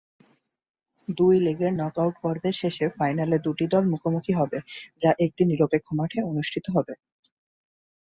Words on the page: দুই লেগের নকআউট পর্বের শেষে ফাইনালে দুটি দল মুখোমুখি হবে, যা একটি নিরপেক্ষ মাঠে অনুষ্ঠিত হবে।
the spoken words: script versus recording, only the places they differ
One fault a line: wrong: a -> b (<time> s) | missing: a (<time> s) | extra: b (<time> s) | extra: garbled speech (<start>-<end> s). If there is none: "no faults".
no faults